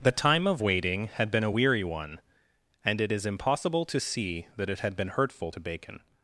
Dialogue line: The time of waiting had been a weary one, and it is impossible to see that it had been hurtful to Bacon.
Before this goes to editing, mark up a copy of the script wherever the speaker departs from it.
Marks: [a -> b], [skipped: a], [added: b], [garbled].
The time of waiting had been a weary one, and it is impossible to see that it had been hurtful to Bacon.